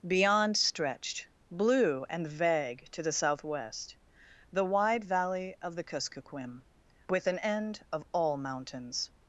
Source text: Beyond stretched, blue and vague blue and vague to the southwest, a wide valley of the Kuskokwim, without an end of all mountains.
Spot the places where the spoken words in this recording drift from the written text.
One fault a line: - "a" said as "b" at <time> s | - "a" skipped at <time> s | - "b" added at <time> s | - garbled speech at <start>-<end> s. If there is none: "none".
- "blue and vague" skipped at 2.9 s
- "a" said as "the" at 4.5 s
- "without" said as "with" at 7.1 s